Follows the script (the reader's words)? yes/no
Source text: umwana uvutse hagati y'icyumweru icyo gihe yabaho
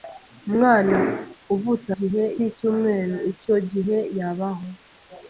no